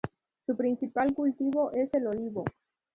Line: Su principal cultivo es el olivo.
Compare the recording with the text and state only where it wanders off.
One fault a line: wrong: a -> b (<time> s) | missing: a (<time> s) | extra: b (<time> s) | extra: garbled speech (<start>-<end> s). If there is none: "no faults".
no faults